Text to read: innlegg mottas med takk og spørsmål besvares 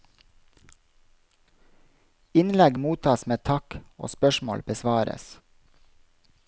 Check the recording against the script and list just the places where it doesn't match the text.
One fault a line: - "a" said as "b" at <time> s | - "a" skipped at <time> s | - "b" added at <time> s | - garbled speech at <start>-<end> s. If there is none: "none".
none